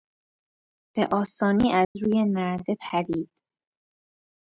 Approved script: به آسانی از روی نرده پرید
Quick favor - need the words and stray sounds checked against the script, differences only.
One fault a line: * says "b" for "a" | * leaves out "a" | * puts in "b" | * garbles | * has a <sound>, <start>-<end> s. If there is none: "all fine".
* has a dropout, 1.8-2.0 s